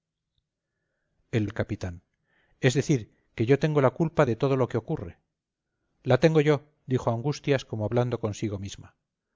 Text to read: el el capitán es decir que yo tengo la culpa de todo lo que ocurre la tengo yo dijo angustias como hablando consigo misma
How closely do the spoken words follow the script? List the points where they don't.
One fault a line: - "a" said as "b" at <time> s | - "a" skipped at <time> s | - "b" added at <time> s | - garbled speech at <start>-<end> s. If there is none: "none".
none